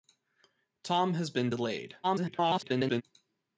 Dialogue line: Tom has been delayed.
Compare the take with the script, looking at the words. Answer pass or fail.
fail